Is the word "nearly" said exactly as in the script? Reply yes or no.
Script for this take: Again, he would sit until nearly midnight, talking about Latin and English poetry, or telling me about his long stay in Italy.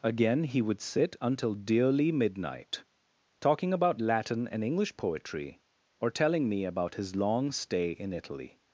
no